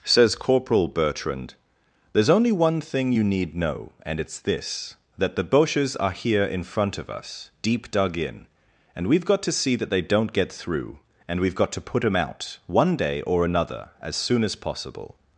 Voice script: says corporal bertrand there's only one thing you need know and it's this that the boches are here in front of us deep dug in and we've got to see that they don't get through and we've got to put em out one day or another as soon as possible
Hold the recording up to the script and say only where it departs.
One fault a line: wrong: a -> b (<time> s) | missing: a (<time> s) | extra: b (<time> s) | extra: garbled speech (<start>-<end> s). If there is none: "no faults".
no faults